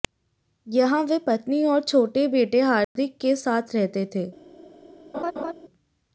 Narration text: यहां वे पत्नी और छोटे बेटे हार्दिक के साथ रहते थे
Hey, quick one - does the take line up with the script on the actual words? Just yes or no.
yes